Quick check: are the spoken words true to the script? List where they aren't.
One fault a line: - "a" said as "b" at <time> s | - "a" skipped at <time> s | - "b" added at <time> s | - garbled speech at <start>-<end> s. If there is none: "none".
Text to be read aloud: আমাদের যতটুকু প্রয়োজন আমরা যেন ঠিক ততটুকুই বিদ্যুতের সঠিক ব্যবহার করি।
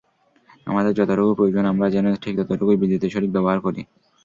none